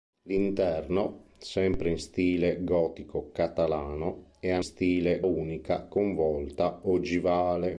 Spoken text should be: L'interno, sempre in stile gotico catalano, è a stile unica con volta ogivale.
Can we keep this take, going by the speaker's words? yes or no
yes